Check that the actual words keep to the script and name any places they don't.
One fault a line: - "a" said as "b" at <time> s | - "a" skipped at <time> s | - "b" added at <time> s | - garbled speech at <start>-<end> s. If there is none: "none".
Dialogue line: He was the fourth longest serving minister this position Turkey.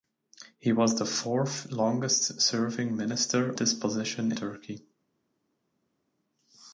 none